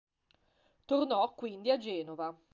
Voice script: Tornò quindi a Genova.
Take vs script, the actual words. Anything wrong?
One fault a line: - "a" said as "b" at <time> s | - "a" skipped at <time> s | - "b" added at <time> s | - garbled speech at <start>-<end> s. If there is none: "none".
none